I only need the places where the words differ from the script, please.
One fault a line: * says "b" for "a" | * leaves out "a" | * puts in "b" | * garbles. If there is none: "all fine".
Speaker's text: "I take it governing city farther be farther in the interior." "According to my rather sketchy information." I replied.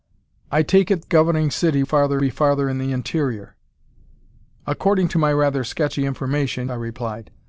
all fine